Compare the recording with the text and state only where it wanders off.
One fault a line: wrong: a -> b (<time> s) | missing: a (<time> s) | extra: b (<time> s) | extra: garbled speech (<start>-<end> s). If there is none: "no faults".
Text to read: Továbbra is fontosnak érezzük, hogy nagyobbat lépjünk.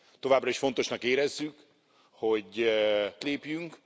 missing: nagyobbat (2.7 s)